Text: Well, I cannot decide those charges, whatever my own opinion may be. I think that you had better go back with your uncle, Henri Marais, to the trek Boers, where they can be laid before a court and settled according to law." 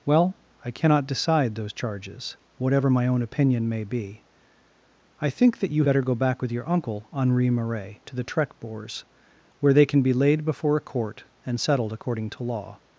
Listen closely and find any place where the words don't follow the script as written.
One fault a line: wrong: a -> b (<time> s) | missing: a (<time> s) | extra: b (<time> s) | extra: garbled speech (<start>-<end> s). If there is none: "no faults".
missing: had (5.8 s)